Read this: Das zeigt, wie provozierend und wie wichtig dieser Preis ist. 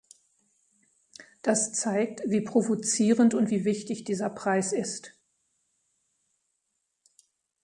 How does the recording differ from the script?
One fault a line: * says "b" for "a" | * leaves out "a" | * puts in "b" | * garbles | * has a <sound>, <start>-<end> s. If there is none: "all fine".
all fine